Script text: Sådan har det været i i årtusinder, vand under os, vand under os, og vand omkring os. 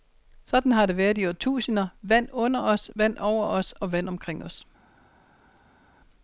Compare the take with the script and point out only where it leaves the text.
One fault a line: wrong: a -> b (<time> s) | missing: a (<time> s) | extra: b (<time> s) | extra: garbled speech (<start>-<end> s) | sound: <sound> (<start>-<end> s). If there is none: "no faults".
missing: i (1.3 s)
wrong: under -> over (3.2 s)